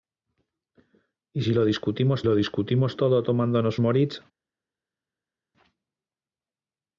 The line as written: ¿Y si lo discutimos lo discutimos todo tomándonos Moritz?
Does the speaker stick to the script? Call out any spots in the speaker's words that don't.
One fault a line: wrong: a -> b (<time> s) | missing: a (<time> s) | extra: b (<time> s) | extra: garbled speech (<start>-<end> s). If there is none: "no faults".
no faults